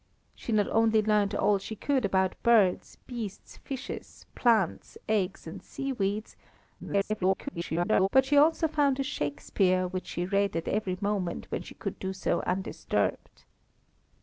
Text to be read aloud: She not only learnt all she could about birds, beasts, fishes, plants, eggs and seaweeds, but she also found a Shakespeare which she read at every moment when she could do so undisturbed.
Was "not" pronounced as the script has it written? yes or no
yes